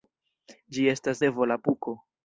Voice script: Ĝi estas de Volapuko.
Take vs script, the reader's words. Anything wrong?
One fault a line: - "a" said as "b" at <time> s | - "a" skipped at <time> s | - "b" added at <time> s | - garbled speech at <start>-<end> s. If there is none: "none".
none